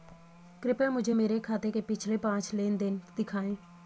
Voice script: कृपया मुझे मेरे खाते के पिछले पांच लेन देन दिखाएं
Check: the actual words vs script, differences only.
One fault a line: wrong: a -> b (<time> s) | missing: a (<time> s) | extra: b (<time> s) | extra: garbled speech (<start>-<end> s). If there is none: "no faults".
no faults